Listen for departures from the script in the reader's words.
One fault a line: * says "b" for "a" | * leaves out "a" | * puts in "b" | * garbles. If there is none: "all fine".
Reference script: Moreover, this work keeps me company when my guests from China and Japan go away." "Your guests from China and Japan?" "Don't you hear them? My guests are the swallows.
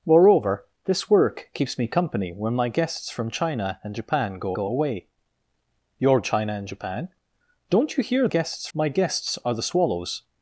* puts in "go"
* leaves out "guests from"
* says "guests" for "them"